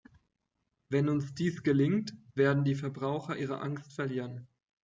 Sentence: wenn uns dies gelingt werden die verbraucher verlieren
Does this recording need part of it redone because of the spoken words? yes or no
yes